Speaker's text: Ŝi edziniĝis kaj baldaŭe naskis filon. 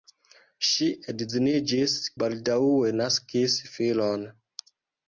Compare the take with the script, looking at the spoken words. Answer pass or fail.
fail